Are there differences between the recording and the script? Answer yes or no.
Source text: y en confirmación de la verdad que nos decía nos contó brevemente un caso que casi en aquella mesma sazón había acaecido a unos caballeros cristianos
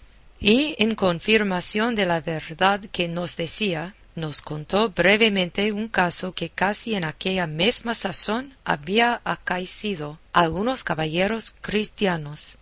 no